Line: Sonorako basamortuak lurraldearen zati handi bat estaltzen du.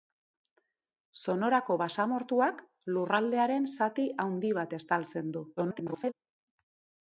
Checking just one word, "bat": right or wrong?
right